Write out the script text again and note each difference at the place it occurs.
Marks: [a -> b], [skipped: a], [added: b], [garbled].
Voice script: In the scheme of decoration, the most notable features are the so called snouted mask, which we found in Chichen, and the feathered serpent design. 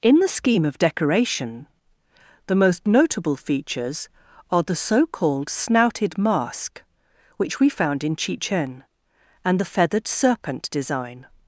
In the scheme of decoration, the most notable features are the so called snouted mask, which we found in Chichen, and the feathered serpent design.